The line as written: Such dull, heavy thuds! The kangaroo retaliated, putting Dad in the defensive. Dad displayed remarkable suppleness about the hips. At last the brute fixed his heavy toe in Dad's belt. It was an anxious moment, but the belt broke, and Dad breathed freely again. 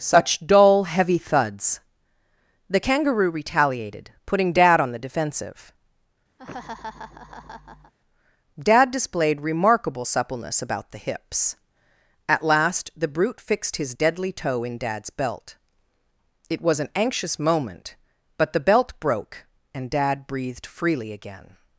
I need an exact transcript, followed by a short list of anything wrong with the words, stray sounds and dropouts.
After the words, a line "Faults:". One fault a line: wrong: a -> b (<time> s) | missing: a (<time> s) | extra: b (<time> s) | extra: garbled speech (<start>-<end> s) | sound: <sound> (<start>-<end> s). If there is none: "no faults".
Such dull, heavy thuds! The kangaroo retaliated, putting Dad on the defensive. Dad displayed remarkable suppleness about the hips. At last the brute fixed his deadly toe in Dad's belt. It was an anxious moment, but the belt broke, and Dad breathed freely again.
Faults:
wrong: in -> on (4.8 s)
sound: laugh (6.4-7.9 s)
wrong: heavy -> deadly (13.9 s)